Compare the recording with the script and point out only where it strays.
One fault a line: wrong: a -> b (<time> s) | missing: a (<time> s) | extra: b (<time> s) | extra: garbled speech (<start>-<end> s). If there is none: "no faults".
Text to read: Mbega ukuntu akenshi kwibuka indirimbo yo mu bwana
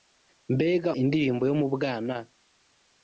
missing: ukuntu akenshi kwibuka (0.9 s)